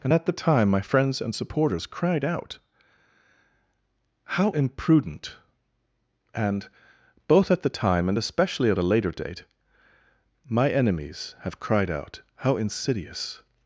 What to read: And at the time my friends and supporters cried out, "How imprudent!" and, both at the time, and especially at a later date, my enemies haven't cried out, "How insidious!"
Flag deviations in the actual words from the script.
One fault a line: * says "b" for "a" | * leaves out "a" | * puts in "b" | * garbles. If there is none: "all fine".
* says "have" for "haven't"